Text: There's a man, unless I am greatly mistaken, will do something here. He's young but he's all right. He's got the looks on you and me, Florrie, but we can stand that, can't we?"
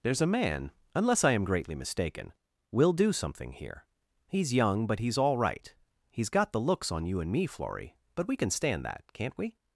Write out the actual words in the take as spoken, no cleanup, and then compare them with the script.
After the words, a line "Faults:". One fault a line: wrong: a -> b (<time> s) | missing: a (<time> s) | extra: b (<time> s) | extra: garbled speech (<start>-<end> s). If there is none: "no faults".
There's a man, unless I am greatly mistaken, will do something here. He's young but he's all right. He's got the looks on you and me, Florrie, but we can stand that, can't we?"
Faults:
no faults